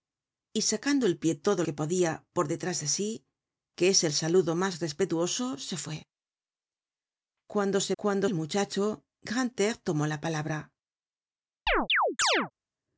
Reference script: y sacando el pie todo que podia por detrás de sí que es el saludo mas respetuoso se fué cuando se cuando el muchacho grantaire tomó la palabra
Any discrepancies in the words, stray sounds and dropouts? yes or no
yes